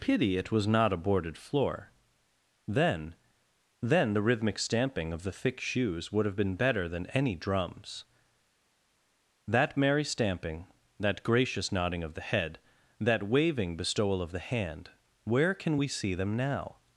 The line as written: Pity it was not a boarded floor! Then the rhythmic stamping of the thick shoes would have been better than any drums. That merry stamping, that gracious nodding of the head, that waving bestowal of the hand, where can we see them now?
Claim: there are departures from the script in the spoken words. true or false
true